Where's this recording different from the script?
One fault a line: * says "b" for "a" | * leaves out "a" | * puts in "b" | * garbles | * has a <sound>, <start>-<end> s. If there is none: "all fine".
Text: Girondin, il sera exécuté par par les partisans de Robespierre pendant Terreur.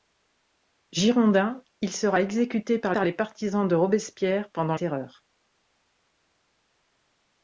all fine